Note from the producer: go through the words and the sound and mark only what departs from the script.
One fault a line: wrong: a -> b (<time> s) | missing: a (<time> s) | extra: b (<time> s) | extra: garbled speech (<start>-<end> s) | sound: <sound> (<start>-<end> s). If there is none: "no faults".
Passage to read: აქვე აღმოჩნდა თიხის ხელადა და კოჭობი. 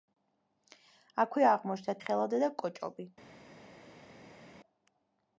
missing: თიხის (1.9 s)